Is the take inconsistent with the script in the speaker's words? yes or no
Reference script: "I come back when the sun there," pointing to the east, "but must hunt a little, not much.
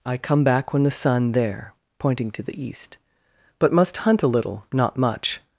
no